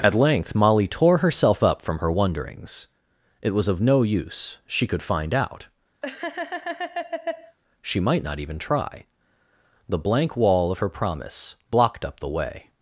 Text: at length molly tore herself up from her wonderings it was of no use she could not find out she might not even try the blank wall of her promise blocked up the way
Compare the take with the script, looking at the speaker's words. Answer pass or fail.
fail